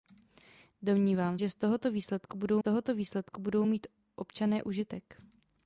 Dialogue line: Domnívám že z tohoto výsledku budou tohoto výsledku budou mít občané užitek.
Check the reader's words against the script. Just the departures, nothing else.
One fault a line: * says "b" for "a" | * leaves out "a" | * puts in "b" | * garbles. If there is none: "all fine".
all fine